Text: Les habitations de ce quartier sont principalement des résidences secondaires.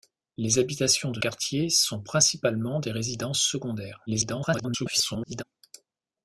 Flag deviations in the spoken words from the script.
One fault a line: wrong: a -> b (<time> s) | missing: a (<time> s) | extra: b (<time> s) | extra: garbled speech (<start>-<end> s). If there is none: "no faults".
missing: ce (1.2 s)
extra: garbled speech (4.1-5.4 s)